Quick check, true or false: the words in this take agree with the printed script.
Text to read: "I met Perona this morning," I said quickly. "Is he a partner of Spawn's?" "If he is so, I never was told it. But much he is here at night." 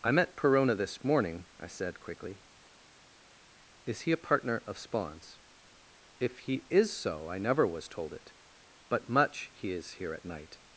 true